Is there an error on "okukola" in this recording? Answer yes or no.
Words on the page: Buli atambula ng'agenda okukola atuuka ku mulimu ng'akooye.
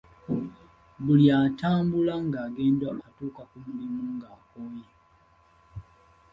yes